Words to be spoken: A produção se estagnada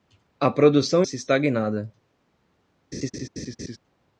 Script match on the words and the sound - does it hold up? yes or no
no